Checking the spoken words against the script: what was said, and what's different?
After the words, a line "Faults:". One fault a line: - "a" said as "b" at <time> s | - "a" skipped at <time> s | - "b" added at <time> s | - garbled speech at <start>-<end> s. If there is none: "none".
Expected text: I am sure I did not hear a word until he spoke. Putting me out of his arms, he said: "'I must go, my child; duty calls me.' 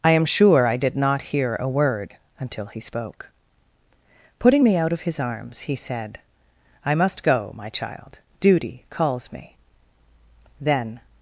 I am sure I did not hear a word until he spoke. Putting me out of his arms, he said: "'I must go, my child; duty calls me.' "'Then
Faults:
- "Then" added at 10.6 s